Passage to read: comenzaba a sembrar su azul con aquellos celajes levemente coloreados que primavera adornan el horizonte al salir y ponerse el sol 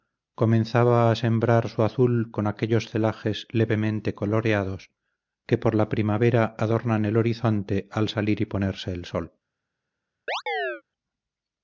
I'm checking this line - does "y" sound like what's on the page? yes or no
yes